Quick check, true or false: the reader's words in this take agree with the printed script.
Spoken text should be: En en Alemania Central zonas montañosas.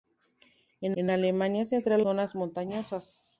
true